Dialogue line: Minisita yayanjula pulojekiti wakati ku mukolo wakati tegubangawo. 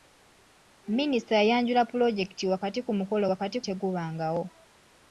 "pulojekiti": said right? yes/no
yes